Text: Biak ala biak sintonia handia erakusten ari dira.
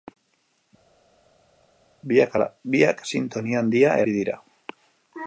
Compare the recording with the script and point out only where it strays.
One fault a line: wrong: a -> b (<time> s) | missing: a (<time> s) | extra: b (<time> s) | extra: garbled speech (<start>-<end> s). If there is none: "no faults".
missing: erakusten (4.0 s)